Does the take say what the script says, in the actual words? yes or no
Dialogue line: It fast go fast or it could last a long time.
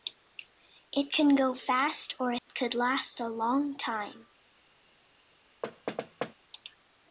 no